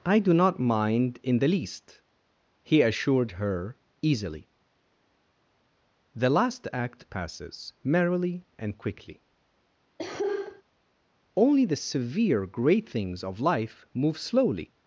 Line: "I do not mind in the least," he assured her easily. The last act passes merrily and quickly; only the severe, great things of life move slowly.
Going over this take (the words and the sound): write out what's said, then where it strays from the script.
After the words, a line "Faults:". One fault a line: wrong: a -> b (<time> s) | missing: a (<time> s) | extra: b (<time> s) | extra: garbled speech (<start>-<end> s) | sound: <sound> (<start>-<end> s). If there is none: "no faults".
"I do not mind in the least," he assured her easily. The last act passes merrily and quickly; only the severe, great things of life move slowly.
Faults:
sound: cough (10.0-10.6 s)